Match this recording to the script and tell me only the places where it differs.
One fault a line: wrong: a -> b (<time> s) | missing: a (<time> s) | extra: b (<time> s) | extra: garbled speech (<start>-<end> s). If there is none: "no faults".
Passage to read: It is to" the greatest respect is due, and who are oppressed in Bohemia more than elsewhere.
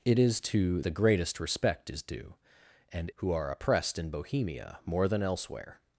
no faults